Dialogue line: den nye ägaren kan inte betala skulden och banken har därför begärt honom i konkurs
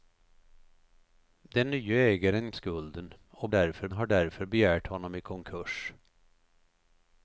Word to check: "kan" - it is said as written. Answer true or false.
false